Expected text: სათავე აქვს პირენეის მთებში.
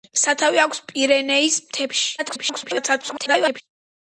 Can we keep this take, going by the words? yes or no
no